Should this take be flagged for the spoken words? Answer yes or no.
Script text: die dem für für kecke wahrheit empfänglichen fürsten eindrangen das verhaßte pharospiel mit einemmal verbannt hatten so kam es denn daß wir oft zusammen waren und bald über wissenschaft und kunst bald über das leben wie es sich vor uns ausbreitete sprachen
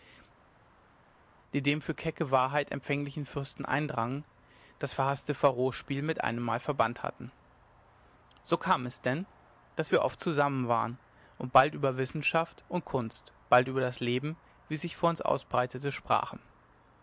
yes